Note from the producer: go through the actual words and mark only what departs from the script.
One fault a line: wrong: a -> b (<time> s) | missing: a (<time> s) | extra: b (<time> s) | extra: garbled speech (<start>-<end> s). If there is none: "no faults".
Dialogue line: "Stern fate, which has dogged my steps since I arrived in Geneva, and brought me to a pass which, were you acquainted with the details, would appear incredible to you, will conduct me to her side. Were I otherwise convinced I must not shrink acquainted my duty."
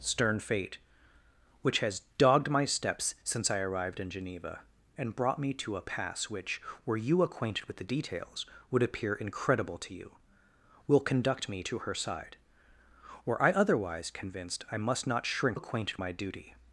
no faults